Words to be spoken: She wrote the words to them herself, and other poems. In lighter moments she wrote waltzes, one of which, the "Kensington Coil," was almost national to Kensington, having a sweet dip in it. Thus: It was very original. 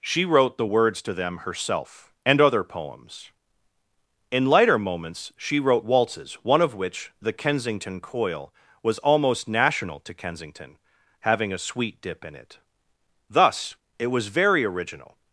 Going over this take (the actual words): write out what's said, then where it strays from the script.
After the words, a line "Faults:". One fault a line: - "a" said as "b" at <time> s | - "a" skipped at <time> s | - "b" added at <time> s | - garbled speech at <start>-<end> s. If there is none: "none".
She wrote the words to them herself, and other poems. In lighter moments she wrote waltzes, one of which, the "Kensington Coil," was almost national to Kensington, having a sweet dip in it. Thus: It was very original.
Faults:
none